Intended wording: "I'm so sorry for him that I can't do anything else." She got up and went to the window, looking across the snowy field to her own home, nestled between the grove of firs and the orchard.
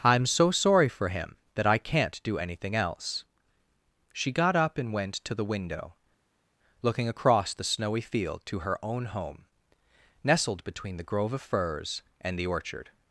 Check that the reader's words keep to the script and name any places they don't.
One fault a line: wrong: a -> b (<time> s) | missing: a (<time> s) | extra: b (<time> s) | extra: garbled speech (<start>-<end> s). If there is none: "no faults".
no faults